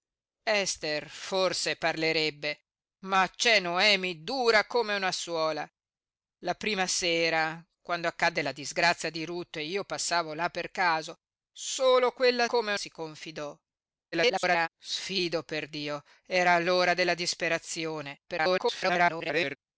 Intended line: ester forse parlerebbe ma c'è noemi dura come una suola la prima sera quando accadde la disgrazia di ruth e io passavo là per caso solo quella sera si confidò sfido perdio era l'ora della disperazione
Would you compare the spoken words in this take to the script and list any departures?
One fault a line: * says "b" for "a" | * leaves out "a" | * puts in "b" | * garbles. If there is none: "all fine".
* says "come" for "sera"
* garbles
* garbles